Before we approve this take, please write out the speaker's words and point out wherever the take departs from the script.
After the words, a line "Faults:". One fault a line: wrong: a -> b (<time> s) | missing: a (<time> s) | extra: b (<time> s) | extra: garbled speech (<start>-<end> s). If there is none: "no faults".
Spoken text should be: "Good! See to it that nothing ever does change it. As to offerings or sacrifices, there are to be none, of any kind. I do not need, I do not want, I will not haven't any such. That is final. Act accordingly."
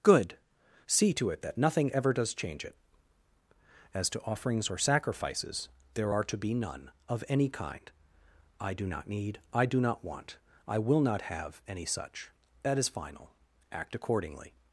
"Good! See to it that nothing ever does change it. As to offerings or sacrifices, there are to be none, of any kind. I do not need, I do not want, I will not have any such. That is final. Act accordingly."
Faults:
wrong: haven't -> have (11.2 s)